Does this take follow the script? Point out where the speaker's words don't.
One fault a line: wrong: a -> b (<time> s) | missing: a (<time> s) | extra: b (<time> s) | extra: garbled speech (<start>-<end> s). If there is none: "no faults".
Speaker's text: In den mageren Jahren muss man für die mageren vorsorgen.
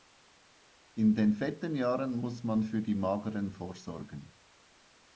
wrong: mageren -> fetten (1.3 s)